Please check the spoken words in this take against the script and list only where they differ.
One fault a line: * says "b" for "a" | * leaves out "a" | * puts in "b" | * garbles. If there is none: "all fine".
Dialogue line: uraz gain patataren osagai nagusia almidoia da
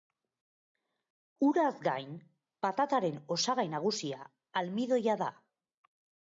all fine